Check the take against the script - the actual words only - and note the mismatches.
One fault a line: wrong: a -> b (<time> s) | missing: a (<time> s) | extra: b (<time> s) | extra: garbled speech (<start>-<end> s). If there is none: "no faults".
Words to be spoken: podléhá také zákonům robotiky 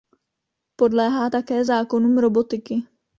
no faults